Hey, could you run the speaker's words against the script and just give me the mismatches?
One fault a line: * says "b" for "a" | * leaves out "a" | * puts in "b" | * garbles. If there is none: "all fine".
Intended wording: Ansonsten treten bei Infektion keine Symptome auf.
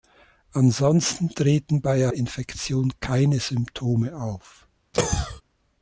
all fine